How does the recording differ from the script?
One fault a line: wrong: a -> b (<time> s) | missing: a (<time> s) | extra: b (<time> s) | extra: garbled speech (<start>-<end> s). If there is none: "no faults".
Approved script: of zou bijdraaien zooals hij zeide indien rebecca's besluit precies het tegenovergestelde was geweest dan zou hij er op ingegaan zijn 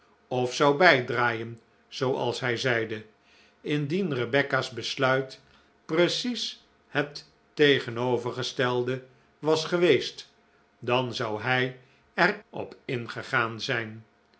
no faults